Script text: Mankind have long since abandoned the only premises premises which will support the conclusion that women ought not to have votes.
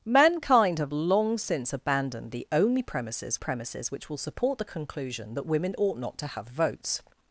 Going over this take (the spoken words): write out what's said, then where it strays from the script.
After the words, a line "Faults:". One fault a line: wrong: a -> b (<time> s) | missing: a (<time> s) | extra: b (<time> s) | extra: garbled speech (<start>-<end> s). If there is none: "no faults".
Mankind have long since abandoned the only premises premises which will support the conclusion that women ought not to have votes.
Faults:
no faults